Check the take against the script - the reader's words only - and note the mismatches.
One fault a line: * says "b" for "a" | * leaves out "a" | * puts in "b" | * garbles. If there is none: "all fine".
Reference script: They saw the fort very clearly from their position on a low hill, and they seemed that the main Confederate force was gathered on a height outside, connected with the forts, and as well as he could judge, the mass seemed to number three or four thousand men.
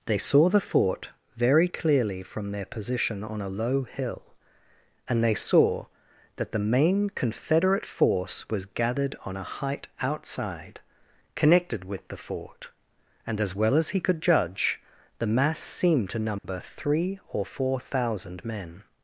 * says "saw" for "seemed"
* says "fort" for "forts"